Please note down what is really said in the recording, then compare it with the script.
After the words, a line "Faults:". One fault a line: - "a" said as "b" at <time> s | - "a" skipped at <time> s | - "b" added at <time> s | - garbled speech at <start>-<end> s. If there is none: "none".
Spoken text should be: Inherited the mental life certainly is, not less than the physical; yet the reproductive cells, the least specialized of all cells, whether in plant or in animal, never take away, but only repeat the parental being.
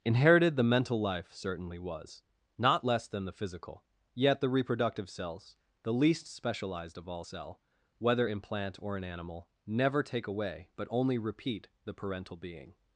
Inherited the mental life certainly was, not less than the physical; yet the reproductive cells, the least specialized of all cell, whether in plant or in animal, never take away, but only repeat the parental being.
Faults:
- "is" said as "was" at 1.8 s
- "cells" said as "cell" at 7.2 s